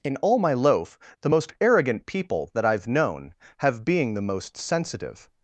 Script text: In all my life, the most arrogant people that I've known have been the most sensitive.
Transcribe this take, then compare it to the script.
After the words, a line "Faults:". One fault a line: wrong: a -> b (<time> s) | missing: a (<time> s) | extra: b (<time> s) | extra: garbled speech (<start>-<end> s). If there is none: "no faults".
In all my loaf, the most arrogant people that I've known have being the most sensitive.
Faults:
wrong: life -> loaf (0.5 s)
wrong: been -> being (3.8 s)